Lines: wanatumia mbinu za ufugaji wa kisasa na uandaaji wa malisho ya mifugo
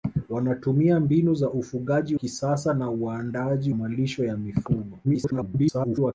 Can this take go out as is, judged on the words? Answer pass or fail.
fail